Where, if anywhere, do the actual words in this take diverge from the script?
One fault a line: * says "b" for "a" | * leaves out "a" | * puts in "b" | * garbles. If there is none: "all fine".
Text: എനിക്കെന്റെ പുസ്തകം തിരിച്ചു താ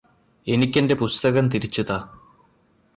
all fine